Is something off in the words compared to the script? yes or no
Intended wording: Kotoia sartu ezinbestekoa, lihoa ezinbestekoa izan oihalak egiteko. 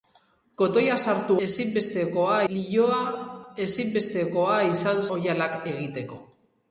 no